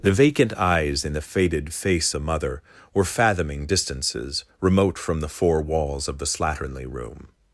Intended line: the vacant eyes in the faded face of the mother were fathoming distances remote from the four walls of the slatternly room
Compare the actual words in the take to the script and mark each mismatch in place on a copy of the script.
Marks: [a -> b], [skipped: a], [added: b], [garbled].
the vacant eyes in the faded face [skipped: of] the mother were fathoming distances remote from the four walls of the slatternly room